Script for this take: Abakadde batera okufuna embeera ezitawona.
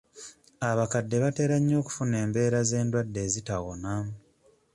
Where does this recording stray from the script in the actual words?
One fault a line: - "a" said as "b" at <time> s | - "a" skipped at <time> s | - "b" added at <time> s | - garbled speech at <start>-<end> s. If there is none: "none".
- "nnyo" added at 1.6 s
- "z'endwadde" added at 2.7 s